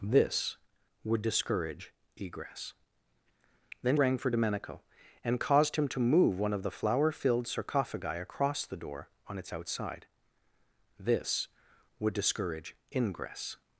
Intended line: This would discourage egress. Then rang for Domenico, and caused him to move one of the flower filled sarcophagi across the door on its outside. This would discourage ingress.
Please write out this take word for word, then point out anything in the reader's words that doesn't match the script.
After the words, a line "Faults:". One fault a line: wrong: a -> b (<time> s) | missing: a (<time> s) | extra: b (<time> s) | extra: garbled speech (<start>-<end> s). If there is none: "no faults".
This would discourage egress. Then rang for Domenico, and caused him to move one of the flower filled sarcophagi across the door on its outside. This would discourage ingress.
Faults:
no faults